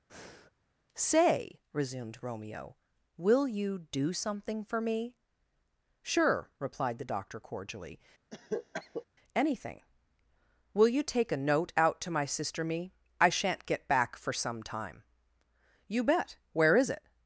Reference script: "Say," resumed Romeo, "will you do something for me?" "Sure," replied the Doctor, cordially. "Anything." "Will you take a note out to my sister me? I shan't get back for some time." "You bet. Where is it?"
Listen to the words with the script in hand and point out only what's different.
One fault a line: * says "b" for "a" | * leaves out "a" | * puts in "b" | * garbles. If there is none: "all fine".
all fine